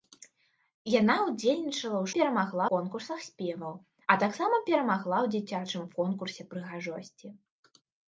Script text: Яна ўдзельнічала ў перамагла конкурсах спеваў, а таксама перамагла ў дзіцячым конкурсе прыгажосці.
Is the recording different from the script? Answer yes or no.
no